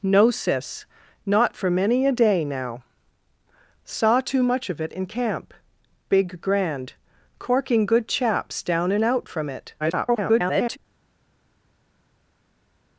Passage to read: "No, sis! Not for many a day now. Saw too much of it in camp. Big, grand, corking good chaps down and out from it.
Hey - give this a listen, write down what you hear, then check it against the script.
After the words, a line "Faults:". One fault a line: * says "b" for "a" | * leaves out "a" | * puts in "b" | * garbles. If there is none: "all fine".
"No, sis! Not for many a day now. Saw too much of it in camp. Big, grand, corking good chaps down and out from it. [garbled]
Faults:
* garbles